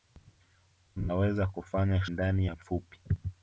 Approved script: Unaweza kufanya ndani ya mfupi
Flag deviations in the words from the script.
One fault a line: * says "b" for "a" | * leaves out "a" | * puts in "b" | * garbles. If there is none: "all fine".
all fine